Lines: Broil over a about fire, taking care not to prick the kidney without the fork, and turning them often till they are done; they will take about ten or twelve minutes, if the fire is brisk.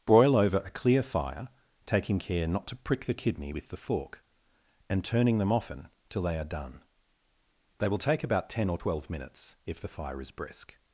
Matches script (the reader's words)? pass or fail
fail